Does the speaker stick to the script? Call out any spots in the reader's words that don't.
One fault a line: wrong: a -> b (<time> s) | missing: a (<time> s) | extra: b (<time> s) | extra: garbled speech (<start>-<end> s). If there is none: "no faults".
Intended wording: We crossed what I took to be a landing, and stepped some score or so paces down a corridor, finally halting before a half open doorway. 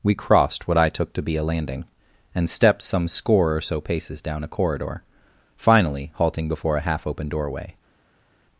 no faults